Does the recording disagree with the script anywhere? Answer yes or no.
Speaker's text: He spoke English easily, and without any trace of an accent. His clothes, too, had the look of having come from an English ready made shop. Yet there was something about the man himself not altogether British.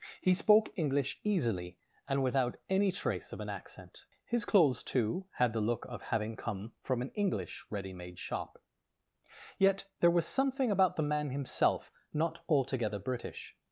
no